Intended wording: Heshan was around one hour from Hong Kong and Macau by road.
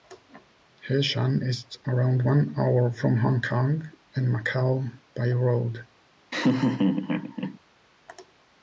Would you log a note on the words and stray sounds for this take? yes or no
yes